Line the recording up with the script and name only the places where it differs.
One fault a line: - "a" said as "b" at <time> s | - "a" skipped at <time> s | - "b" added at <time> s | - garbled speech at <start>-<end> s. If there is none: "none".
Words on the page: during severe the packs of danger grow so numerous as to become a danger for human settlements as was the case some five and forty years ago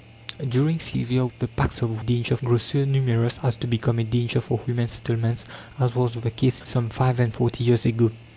none